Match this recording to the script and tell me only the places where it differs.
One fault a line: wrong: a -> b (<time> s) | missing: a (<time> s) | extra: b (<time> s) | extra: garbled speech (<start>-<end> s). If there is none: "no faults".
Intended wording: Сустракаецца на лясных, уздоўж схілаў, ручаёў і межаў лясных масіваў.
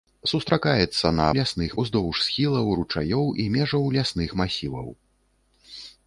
no faults